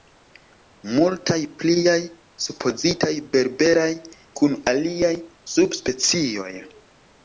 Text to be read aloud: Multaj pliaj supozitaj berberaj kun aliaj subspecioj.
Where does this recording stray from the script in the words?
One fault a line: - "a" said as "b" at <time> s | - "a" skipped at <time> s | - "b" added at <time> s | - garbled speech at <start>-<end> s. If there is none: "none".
none